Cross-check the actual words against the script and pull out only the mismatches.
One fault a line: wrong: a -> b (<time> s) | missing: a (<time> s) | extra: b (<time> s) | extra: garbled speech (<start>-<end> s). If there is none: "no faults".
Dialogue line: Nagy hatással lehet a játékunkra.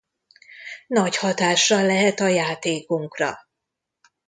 no faults